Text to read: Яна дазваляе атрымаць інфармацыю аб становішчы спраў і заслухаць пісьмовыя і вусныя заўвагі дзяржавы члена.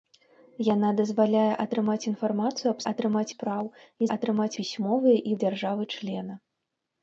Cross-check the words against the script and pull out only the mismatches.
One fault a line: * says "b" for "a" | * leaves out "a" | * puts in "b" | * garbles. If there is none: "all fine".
* says "атрымаць" for "становішчы"
* says "атрымаць" for "заслухаць"
* leaves out "вусныя заўвагі"